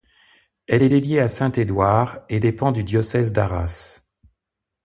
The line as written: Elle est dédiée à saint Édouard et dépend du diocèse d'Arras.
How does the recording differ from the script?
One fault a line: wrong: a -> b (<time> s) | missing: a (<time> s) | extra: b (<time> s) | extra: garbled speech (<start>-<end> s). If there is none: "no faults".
no faults